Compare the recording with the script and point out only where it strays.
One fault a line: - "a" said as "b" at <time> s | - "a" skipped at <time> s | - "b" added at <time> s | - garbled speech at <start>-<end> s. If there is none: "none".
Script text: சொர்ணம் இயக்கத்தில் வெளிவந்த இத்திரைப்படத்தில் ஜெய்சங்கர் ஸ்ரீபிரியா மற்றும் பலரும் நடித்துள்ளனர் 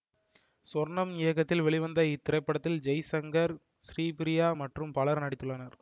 none